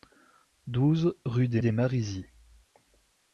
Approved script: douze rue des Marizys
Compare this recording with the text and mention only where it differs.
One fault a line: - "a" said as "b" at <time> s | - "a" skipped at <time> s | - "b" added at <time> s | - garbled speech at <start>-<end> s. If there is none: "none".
- "des" added at 1.6 s